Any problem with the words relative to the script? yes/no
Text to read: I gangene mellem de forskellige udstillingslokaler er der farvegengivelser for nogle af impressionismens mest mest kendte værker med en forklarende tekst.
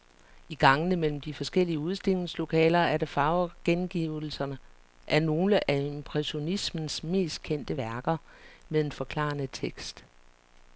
yes